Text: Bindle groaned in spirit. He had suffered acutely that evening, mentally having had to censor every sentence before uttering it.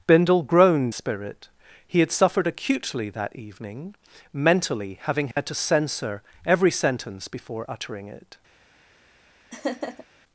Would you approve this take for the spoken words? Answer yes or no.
no